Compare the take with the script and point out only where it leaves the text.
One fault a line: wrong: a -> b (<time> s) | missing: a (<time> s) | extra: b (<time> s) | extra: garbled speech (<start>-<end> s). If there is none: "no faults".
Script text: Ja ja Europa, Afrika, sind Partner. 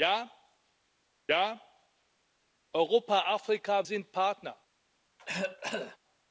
no faults